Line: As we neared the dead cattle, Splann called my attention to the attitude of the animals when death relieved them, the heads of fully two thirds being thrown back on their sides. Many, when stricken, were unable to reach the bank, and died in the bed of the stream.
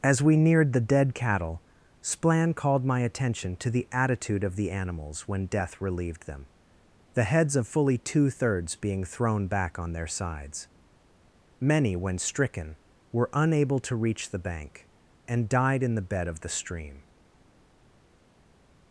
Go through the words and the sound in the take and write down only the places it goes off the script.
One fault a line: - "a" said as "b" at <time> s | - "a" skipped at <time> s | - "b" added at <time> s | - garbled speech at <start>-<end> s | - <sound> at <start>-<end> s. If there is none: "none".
none